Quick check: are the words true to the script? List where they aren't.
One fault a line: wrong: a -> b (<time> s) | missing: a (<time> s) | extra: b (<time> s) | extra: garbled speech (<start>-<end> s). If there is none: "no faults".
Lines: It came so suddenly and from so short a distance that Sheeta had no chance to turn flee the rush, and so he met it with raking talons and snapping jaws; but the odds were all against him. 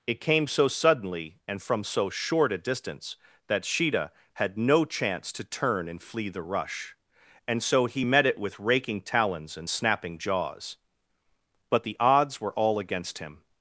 extra: and (5.9 s)